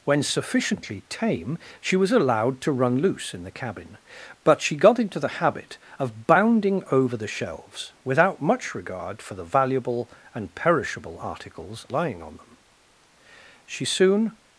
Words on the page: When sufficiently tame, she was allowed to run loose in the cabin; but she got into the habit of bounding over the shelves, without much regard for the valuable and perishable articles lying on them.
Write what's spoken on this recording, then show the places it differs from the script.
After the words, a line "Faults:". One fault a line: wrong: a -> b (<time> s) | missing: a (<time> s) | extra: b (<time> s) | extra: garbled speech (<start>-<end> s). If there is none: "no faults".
When sufficiently tame, she was allowed to run loose in the cabin; but she got into the habit of bounding over the shelves, without much regard for the valuable and perishable articles lying on them. She soon
Faults:
extra: She soon (13.6 s)